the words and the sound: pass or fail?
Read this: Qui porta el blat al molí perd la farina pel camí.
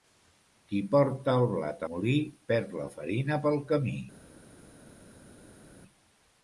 fail